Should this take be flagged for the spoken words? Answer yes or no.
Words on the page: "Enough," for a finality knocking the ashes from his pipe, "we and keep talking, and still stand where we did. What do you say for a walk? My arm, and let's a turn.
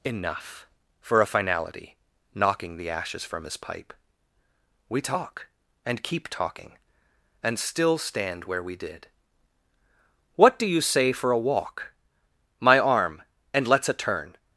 yes